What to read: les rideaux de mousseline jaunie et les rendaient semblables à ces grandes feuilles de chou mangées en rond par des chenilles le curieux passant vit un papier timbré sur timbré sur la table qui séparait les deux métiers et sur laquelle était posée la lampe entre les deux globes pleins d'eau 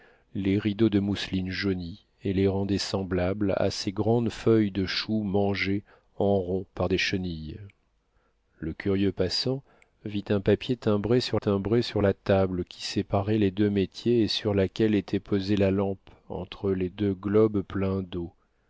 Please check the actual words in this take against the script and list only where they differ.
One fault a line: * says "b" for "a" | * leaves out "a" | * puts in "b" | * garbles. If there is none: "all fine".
all fine